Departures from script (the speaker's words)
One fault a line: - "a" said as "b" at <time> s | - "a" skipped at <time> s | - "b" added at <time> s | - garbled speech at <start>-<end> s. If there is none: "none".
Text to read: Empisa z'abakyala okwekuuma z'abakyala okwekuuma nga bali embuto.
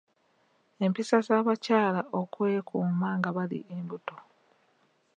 - "z'abakyala okwekuuma" skipped at 3.1 s